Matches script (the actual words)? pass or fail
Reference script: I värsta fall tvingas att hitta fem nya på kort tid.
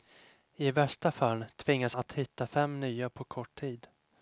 pass